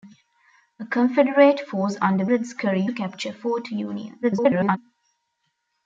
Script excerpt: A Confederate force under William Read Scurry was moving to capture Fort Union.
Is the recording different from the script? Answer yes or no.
yes